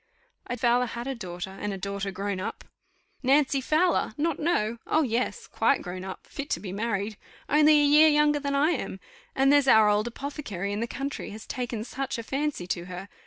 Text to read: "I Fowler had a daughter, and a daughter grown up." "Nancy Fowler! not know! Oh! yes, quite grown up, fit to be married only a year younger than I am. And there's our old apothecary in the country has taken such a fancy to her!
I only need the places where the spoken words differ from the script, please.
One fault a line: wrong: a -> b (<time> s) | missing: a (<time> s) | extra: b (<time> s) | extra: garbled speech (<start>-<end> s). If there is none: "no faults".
no faults